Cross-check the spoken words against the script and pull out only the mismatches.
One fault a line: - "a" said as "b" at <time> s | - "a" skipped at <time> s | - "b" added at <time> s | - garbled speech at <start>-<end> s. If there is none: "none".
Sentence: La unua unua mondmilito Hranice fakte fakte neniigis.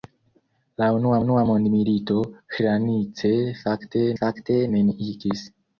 none